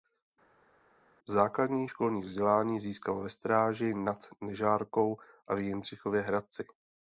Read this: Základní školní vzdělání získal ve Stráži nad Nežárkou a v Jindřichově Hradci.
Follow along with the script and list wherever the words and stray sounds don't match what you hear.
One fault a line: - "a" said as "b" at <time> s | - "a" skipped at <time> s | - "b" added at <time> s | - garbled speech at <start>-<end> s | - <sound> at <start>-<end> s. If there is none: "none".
none